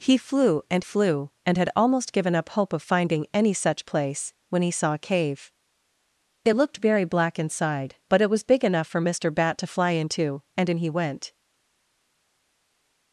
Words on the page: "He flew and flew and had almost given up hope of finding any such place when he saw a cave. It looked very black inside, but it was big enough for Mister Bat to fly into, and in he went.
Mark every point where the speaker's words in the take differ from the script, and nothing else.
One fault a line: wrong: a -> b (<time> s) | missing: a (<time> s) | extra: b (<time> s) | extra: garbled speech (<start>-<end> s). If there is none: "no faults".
no faults